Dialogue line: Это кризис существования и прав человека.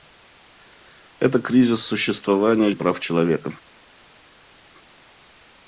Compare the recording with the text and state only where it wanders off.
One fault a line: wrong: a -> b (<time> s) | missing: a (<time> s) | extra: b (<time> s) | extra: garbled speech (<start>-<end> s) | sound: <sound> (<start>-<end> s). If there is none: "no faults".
no faults